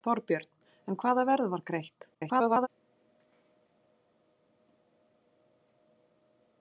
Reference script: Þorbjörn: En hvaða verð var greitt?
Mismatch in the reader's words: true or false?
true